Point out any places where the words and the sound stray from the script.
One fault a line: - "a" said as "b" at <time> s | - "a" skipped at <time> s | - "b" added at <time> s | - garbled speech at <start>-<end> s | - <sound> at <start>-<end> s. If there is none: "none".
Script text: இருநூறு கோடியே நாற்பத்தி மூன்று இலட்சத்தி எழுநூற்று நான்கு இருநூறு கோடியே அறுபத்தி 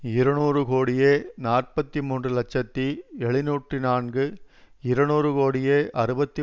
none